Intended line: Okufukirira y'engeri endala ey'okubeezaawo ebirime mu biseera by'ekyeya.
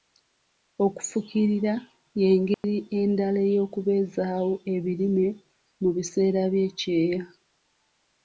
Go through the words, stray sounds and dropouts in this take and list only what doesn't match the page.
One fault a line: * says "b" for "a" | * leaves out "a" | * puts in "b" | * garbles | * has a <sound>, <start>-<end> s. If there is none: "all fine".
* has a dropout, 2.5-2.6 s